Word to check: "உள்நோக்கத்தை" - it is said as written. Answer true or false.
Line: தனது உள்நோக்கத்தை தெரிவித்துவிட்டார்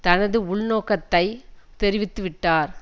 true